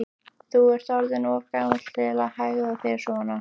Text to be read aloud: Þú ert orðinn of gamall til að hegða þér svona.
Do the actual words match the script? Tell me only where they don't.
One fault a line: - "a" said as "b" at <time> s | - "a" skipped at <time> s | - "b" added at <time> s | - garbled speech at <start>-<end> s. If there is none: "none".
none